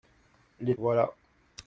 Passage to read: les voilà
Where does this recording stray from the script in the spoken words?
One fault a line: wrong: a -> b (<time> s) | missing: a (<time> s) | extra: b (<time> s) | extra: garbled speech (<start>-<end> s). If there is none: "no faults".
no faults